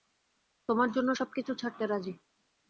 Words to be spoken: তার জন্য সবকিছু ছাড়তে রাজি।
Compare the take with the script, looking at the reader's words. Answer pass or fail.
fail